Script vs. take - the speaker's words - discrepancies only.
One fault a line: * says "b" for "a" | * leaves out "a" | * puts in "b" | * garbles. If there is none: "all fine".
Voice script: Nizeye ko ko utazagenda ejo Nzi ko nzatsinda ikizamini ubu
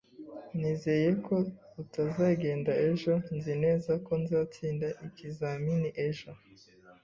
* leaves out "ko"
* puts in "neza"
* says "ejo" for "ubu"